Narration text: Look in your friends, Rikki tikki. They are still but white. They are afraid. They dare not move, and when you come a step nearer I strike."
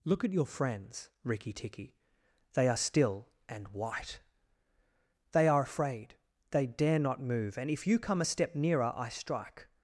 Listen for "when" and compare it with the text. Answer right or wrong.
wrong